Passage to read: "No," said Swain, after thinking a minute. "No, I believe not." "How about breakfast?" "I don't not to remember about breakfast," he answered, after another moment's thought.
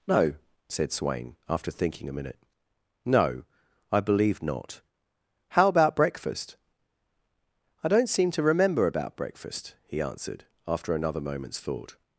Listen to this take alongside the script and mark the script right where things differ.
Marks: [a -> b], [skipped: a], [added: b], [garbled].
"No," said Swain, after thinking a minute. "No, I believe not." "How about breakfast?" "I don't [not -> seem] to remember about breakfast," he answered, after another moment's thought.